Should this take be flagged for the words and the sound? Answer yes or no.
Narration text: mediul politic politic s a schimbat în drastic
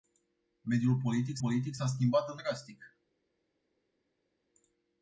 no